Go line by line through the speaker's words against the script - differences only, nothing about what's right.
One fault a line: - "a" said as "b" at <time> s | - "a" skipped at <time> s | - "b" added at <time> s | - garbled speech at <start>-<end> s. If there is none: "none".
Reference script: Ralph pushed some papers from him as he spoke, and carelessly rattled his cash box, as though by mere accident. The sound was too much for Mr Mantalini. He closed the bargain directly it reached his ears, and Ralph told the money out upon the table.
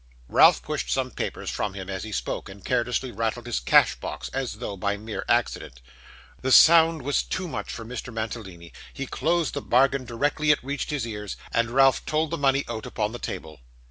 none